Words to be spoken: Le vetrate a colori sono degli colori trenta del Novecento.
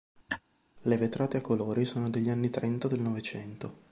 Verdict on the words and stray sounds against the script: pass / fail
fail